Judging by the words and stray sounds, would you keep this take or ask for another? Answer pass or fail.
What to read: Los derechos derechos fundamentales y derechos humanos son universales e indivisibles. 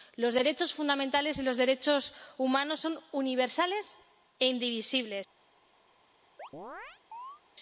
fail